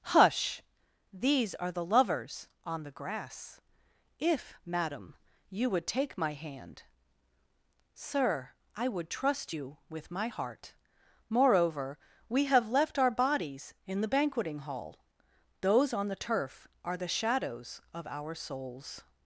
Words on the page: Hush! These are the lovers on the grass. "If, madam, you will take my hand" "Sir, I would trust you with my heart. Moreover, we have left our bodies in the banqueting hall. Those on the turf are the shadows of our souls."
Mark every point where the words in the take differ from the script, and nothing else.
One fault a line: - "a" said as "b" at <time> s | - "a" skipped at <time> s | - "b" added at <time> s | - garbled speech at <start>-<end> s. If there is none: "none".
- "will" said as "would" at 5.7 s